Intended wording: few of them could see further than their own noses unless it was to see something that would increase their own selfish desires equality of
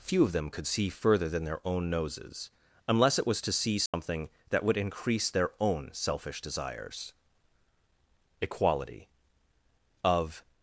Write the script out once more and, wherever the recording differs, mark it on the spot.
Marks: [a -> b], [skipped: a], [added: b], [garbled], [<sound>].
few of them could see further than their own noses unless it was to see something [dropout] that would increase their own selfish desires equality of